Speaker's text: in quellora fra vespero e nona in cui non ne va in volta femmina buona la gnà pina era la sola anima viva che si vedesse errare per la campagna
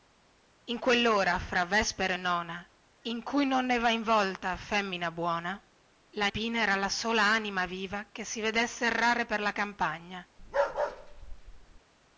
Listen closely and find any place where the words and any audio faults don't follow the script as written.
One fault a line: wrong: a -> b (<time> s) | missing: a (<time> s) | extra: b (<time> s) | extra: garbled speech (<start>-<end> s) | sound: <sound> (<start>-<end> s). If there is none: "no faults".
missing: gnà (6.3 s)
sound: bark (10.4-11.8 s)